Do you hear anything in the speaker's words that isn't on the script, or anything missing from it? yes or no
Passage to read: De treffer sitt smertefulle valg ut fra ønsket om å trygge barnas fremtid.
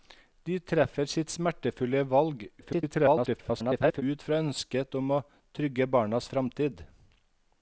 yes